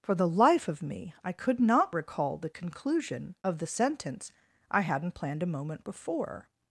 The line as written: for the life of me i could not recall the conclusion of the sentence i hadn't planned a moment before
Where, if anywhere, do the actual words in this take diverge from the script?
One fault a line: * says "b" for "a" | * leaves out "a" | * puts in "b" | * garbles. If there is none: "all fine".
all fine